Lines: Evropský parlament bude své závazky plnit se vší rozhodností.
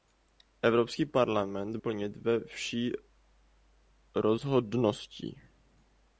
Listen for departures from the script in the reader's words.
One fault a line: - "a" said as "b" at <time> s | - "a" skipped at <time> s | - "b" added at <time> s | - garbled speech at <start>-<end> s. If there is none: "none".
- "bude své závazky" skipped at 1.8 s